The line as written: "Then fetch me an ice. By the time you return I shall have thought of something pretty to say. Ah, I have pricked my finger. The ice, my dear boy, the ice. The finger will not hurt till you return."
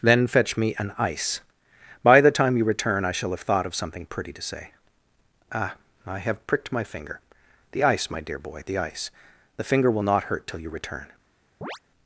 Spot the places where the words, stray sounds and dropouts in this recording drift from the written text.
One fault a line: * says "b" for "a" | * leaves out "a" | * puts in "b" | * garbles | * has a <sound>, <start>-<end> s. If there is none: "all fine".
* has a chirp, 11.6-11.8 s